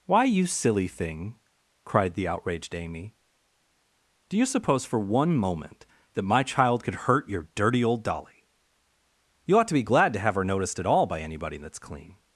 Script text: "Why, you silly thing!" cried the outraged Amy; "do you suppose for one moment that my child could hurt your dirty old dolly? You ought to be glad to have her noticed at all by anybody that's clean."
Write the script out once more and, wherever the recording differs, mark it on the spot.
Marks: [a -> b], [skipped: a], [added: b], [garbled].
"Why, you silly thing!" cried the outraged Amy; "do you suppose for one moment that my child could hurt your dirty old dolly? You ought to be glad to have her noticed at all by anybody that's clean."